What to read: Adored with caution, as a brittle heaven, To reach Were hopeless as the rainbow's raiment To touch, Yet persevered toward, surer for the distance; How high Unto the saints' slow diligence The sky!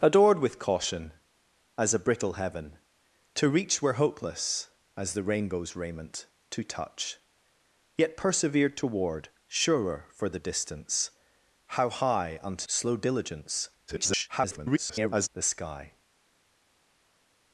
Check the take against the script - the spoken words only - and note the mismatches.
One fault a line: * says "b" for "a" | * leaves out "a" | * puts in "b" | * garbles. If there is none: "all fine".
* leaves out "the saints"
* garbles